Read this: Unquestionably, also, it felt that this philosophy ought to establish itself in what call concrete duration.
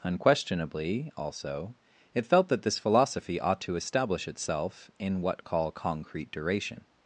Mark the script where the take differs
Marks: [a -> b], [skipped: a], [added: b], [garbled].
Unquestionably, also, it felt that this philosophy ought to establish itself in what call concrete duration.